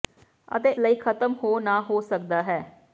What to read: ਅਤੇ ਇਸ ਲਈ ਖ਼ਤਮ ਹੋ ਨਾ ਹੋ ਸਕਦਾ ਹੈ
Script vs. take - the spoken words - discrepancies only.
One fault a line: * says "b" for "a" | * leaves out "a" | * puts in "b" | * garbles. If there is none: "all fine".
* leaves out "ਇਸ"